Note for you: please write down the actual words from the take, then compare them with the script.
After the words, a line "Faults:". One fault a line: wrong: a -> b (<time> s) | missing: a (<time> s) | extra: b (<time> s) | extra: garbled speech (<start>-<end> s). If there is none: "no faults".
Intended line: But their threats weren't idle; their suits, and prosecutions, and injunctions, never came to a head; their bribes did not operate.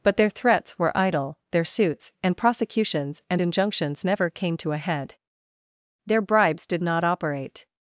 But their threats were idle; their suits, and prosecutions, and injunctions, never came to a head; their bribes did not operate.
Faults:
wrong: weren't -> were (0.8 s)